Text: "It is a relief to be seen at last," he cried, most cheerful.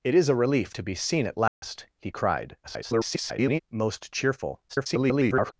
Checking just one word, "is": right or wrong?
right